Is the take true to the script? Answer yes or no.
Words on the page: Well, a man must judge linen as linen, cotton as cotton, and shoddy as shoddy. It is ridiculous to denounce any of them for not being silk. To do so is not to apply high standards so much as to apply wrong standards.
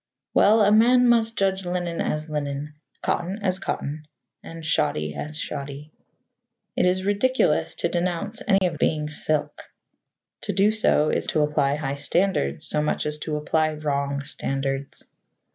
no